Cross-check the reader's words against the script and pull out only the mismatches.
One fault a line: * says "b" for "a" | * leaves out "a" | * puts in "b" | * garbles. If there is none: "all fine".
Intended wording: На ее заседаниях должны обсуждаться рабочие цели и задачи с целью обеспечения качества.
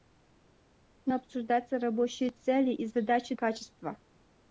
* leaves out "ее заседаниях должны"
* leaves out "с целью обеспечения"